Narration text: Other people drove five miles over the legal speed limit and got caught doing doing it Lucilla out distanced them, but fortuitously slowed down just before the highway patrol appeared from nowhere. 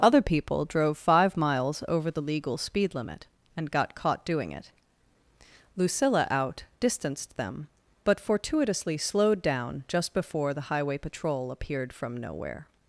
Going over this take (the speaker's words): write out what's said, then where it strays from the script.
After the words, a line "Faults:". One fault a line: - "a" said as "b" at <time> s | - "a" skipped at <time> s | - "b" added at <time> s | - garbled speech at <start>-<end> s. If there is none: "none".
Other people drove five miles over the legal speed limit and got caught doing it Lucilla out distanced them, but fortuitously slowed down just before the highway patrol appeared from nowhere.
Faults:
- "doing" skipped at 4.5 s